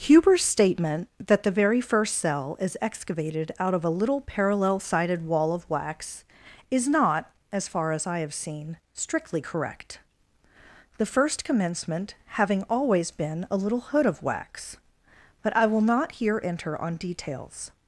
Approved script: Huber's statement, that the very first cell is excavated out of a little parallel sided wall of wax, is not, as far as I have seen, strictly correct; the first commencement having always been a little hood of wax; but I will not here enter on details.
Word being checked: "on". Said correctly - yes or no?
yes